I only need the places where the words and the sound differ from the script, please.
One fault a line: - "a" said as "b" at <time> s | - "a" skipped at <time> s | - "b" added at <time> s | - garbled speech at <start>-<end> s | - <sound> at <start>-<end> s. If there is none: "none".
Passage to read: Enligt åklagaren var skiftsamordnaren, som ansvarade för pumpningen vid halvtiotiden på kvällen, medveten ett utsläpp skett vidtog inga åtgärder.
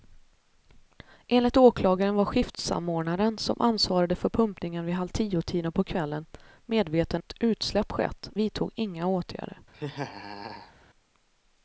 - laugh at 9.7-10.7 s